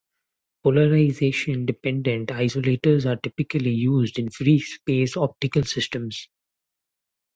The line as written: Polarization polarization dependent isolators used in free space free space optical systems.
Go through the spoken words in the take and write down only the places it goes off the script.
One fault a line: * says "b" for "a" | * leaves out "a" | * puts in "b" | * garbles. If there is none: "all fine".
* leaves out "polarization"
* puts in "are typically"
* leaves out "free space"